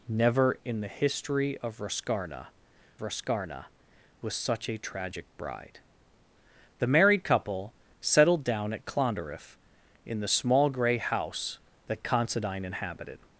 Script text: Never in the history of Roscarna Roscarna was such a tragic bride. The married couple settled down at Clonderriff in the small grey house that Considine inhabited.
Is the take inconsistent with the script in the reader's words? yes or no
no